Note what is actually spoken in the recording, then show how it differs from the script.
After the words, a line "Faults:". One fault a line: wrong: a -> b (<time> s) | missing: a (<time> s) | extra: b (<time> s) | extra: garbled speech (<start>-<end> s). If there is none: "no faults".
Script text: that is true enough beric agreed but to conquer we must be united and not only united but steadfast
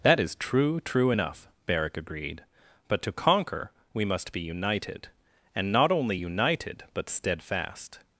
that is true true enough beric agreed but to conquer we must be united and not only united but steadfast
Faults:
extra: true (0.8 s)